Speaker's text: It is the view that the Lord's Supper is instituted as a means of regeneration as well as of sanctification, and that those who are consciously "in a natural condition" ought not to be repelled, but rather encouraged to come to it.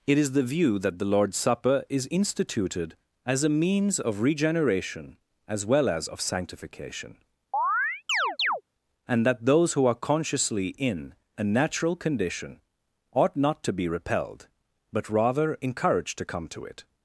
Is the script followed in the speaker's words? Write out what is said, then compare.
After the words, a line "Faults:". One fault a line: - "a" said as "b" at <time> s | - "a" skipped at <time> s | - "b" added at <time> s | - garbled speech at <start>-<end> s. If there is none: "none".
It is the view that the Lord's Supper is instituted as a means of regeneration as well as of sanctification, and that those who are consciously "in a natural condition" ought not to be repelled, but rather encouraged to come to it.
Faults:
none